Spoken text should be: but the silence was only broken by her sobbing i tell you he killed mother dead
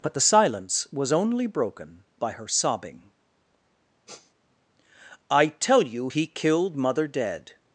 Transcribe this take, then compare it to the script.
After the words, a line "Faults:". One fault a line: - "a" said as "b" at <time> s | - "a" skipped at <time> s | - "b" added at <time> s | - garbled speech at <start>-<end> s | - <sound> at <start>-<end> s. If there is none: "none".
but the silence was only broken by her sobbing i tell you he killed mother dead
Faults:
- sniff at 4.1-4.3 s